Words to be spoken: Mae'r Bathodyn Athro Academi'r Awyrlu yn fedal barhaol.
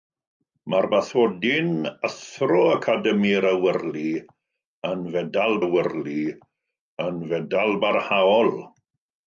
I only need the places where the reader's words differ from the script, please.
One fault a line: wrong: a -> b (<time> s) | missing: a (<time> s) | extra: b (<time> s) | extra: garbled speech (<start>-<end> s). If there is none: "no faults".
extra: Awyrlu yn fedal (5.6 s)